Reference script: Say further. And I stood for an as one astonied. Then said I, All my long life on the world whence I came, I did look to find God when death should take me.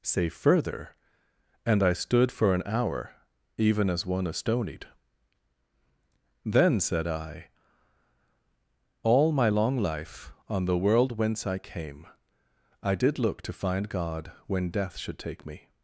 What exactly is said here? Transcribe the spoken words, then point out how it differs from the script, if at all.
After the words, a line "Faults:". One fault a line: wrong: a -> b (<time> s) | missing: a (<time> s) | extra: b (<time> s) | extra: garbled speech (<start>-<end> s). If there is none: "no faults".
Say further. And I stood for an hour, even as one astonied. Then said I, All my long life on the world whence I came, I did look to find God when death should take me.
Faults:
extra: hour even (2.6 s)